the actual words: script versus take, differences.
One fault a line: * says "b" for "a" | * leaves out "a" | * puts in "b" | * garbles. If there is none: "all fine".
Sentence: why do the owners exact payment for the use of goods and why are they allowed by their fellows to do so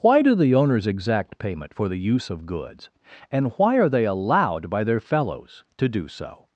all fine